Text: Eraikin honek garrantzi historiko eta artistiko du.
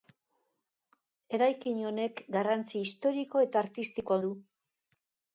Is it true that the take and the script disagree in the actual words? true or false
false